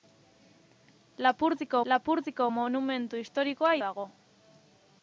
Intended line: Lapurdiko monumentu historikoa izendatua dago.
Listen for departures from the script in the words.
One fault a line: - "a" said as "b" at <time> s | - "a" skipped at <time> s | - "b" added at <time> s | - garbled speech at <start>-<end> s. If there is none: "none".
- "lapurdiko" added at 1.9 s
- "izendatua" skipped at 3.7 s